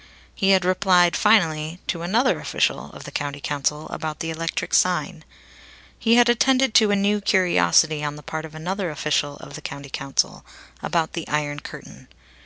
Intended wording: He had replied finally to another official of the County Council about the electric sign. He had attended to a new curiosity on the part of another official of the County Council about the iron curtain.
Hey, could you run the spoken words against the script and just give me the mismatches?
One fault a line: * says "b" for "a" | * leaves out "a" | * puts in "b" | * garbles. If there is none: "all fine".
all fine